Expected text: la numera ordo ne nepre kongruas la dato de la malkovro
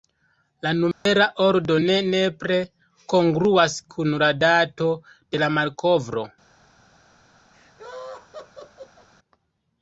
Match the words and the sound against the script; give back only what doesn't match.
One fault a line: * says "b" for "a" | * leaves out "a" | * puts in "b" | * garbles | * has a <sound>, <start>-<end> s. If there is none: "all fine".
* has a dropout, 0.9-1.1 s
* puts in "kun"
* has a laugh, 7.5-9.1 s